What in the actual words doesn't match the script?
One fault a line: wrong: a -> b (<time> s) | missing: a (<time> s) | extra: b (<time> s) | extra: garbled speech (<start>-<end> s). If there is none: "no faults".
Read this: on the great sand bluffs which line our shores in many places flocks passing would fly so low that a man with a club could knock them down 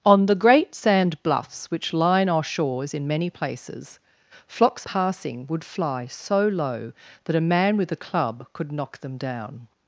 no faults